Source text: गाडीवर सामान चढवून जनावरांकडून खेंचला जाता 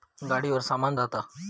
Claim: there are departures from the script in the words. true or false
true